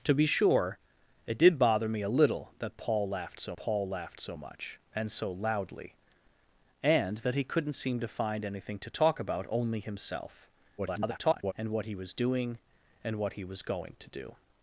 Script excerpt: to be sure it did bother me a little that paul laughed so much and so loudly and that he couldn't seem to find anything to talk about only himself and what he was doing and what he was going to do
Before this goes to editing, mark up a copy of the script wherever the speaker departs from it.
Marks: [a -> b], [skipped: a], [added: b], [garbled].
to be sure it did bother me a little that paul laughed so [added: paul laughed so] much and so loudly and that he couldn't seem to find anything to talk about only himself [garbled] and what he was doing and what he was going to do